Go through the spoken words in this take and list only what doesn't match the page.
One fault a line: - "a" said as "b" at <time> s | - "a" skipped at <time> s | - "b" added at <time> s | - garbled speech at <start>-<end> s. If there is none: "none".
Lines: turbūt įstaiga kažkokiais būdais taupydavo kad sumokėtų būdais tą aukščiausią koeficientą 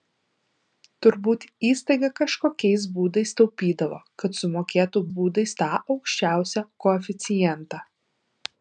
none